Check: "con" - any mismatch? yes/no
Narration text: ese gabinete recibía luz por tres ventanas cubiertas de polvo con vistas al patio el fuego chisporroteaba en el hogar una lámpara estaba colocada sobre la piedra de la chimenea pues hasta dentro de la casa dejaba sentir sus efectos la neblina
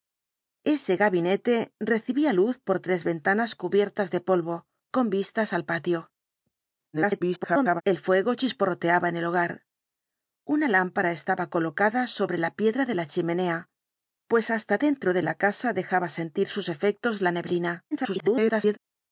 no